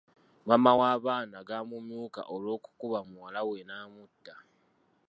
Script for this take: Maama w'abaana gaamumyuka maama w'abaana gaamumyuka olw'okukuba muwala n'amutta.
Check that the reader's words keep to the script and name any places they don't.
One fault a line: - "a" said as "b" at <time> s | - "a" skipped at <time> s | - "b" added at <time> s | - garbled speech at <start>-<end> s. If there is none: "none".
- "maama w'abaana gaamumyuka" skipped at 2.2 s
- "we" added at 3.5 s